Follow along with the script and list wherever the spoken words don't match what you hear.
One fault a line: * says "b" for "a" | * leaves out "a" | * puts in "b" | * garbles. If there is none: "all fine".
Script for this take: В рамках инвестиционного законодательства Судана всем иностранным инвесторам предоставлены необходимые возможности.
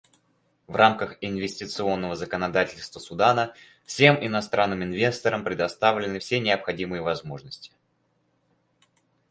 * puts in "все"